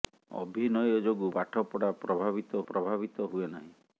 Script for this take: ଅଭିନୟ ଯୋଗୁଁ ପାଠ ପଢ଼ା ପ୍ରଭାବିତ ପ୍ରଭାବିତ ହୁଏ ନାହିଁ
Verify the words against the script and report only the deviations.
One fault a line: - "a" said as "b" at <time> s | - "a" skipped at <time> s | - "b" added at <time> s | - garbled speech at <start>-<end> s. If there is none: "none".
none